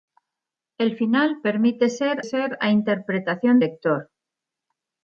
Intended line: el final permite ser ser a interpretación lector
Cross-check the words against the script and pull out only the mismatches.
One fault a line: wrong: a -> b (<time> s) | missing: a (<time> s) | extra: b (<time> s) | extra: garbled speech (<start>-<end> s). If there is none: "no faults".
no faults